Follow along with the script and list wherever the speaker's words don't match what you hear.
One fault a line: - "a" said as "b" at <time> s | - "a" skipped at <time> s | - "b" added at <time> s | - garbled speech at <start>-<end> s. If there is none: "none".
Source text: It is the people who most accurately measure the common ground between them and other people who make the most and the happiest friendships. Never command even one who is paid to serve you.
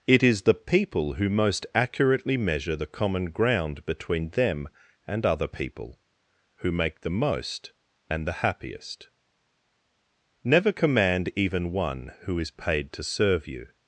- "friendships" skipped at 9.1 s